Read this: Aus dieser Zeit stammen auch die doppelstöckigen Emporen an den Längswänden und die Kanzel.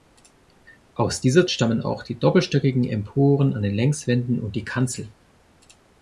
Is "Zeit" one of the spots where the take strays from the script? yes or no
yes